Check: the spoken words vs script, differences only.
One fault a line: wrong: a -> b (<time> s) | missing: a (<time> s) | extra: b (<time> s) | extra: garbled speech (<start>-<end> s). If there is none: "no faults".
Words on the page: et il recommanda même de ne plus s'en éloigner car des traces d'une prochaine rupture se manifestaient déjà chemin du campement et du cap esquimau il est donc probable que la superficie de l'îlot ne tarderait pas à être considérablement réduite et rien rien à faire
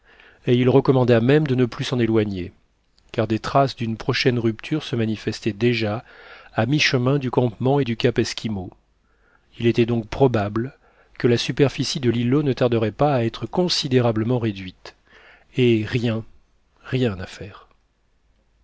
extra: à mi (6.5 s)
wrong: est -> était (9.7 s)